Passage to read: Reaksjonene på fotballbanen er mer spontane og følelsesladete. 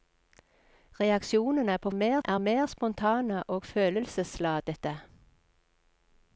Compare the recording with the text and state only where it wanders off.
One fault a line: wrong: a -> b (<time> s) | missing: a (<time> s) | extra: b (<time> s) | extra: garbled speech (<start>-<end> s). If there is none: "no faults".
wrong: fotballbanen -> mer (1.9 s)